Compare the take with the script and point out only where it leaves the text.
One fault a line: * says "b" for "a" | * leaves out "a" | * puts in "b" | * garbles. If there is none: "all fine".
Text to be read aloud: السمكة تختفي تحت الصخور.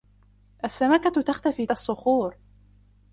* leaves out "تحت"